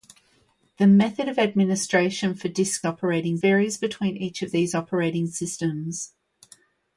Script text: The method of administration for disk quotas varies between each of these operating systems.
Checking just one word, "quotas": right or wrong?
wrong